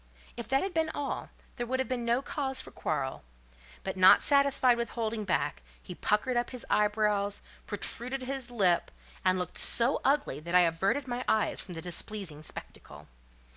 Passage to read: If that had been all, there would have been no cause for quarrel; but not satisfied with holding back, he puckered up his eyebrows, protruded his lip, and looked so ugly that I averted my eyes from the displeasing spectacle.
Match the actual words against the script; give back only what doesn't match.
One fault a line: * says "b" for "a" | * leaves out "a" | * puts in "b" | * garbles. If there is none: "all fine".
all fine